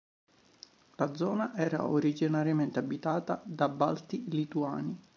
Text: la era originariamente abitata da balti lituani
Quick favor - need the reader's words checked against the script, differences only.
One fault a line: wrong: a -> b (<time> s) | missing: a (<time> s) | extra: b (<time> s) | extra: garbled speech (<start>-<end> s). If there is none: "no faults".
extra: zona (1.1 s)